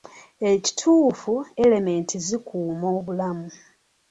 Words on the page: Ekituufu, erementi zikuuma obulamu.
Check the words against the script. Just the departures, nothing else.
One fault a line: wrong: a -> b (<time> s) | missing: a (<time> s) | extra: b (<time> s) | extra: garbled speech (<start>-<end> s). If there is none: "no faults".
no faults